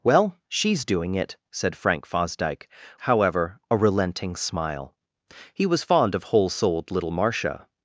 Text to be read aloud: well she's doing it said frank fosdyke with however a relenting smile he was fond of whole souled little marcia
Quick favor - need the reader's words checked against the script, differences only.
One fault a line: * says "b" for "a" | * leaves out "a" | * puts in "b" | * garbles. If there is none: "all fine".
* leaves out "with"